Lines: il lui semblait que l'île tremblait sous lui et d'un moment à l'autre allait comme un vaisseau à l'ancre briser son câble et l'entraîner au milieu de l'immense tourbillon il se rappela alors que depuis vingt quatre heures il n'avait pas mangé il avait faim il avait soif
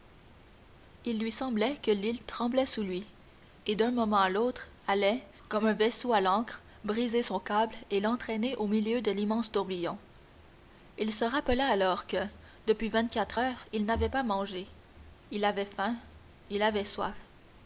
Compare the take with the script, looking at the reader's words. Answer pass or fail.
pass